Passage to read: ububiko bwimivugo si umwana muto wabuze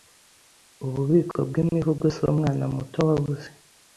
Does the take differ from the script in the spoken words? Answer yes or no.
no